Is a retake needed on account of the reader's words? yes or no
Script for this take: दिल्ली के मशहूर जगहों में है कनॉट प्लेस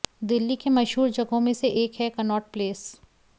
yes